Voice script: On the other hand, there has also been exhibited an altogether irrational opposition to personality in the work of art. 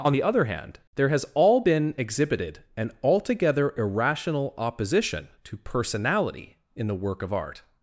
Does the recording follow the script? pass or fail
fail